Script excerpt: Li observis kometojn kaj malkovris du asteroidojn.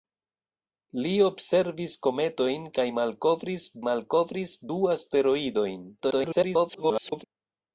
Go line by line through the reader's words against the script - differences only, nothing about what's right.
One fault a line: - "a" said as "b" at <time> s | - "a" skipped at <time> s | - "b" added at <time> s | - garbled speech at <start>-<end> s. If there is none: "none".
- "malkovris" added at 3.9 s
- garbled speech at 6.0-7.2 s